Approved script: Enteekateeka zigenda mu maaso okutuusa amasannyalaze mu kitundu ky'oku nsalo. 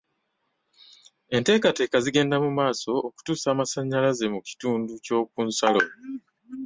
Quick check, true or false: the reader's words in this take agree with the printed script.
true